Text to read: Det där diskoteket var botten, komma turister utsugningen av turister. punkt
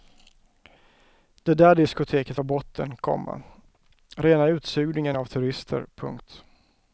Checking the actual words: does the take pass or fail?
fail